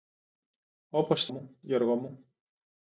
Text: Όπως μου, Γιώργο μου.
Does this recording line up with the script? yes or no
yes